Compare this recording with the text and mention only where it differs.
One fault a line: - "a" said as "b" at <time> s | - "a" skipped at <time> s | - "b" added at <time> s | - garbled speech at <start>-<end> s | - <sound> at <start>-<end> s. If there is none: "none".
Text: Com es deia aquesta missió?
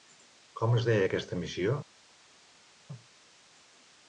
none